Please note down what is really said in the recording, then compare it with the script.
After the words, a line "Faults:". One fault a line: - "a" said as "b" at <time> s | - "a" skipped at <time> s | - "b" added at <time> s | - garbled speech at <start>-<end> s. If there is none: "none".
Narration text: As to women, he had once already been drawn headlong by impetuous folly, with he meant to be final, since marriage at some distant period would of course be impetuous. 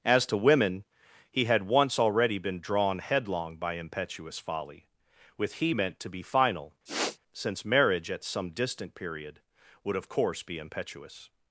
As to women, he had once already been drawn headlong by impetuous folly, with he meant to be final, since marriage at some distant period would of course be impetuous.
Faults:
none